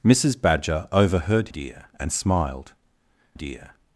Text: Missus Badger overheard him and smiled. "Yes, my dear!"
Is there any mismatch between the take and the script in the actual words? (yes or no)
yes